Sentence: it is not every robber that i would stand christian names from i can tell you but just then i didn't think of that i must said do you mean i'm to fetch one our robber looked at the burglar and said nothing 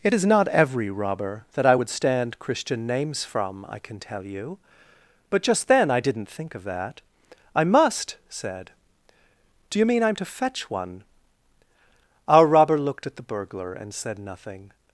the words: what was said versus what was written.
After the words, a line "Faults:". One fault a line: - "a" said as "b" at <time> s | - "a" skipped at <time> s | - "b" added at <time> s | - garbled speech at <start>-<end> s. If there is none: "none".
it is not every robber that i would stand christian names from i can tell you but just then i didn't think of that i must said do you mean i'm to fetch one our robber looked at the burglar and said nothing
Faults:
none